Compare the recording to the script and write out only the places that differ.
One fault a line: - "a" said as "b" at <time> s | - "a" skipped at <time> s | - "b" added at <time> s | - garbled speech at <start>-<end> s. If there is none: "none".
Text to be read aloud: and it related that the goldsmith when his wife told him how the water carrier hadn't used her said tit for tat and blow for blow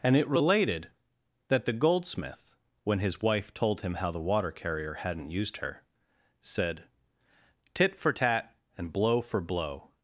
none